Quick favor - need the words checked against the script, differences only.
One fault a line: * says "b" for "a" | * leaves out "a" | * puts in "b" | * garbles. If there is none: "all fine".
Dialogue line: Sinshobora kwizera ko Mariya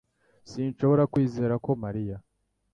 all fine